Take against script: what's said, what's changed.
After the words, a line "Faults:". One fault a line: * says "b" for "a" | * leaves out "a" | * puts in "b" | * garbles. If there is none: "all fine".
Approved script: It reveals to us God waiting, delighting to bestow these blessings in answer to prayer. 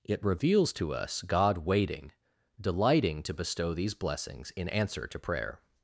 It reveals to us God waiting, delighting to bestow these blessings in answer to prayer.
Faults:
all fine